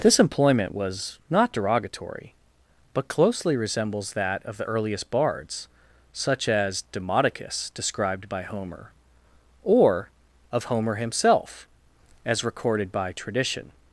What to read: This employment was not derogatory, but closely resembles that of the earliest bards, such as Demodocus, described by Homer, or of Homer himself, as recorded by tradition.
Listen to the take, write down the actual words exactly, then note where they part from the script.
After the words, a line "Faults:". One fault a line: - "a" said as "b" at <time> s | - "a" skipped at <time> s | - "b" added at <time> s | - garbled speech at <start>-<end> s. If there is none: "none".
This employment was not derogatory, but closely resembles that of the earliest bards, such as Demodocus, described by Homer, or of Homer himself, as recorded by tradition.
Faults:
none